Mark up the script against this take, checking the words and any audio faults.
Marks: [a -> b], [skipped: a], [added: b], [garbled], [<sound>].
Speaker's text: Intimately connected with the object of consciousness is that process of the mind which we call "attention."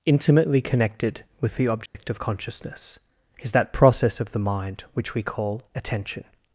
Intimately connected with the object [dropout] of consciousness is that process of the mind which we call "attention."